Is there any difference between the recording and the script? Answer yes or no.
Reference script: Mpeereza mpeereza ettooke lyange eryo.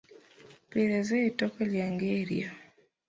yes